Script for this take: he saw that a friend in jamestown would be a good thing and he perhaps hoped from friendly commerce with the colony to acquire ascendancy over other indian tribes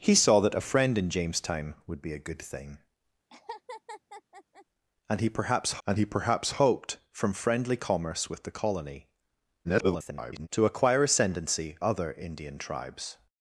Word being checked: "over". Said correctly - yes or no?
no